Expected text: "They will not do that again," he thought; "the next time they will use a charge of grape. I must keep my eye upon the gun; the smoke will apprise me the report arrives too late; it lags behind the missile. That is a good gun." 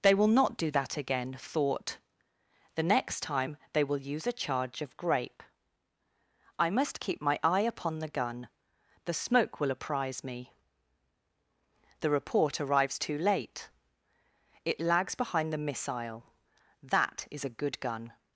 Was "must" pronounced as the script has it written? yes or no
yes